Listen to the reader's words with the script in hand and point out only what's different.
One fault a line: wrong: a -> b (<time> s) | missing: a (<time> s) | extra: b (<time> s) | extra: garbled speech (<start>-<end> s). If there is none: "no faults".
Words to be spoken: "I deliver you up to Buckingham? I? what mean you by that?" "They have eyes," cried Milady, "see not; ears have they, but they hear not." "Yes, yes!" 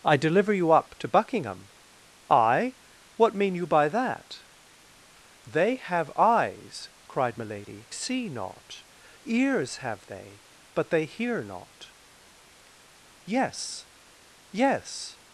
no faults